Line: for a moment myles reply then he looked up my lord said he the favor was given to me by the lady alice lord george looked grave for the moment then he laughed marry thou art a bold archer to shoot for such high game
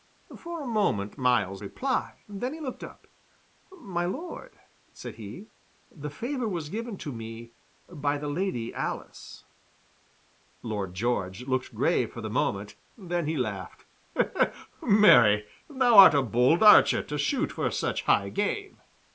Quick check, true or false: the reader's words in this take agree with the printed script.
true